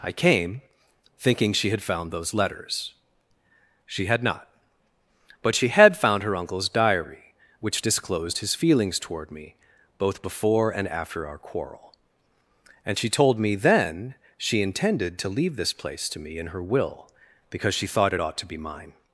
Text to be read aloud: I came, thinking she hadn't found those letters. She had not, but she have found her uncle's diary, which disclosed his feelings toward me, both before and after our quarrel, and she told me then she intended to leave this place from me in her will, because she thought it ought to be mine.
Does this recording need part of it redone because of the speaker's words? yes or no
yes